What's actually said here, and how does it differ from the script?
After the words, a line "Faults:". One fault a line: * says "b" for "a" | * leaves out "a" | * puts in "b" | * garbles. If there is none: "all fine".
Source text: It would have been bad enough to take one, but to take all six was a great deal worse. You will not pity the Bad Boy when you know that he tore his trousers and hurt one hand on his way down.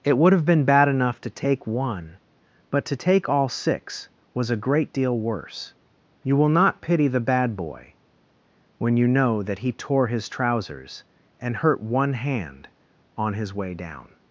It would have been bad enough to take one, but to take all six was a great deal worse. You will not pity the Bad Boy when you know that he tore his trousers and hurt one hand on his way down.
Faults:
all fine